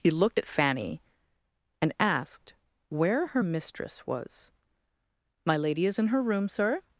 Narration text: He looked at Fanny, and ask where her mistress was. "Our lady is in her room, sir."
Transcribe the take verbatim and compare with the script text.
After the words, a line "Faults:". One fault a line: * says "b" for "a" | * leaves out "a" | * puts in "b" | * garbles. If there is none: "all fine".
He looked at Fanny, and asked where her mistress was. "My lady is in her room, sir."
Faults:
* says "asked" for "ask"
* says "My" for "Our"